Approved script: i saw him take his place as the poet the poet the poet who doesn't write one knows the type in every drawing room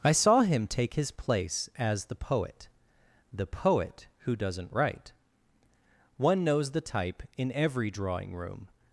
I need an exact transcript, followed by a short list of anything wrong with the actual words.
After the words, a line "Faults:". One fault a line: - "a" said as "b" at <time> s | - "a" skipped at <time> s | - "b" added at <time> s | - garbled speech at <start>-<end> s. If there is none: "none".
i saw him take his place as the poet the poet who doesn't write one knows the type in every drawing room
Faults:
- "the poet" skipped at 4.1 s